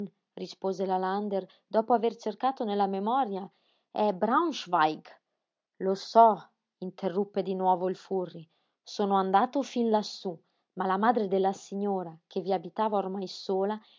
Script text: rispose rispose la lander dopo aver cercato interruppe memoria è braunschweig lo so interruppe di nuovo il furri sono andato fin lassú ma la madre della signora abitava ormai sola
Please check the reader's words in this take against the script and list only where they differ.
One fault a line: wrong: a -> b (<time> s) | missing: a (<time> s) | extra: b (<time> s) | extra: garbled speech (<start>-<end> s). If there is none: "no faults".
missing: rispose (0.9 s)
wrong: interruppe -> nella (2.6 s)
extra: che vi (12.3 s)